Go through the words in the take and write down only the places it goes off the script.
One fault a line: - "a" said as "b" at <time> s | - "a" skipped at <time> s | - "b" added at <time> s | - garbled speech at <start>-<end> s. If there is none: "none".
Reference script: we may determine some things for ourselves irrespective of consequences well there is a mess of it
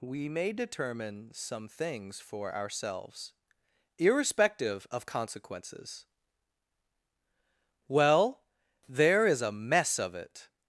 none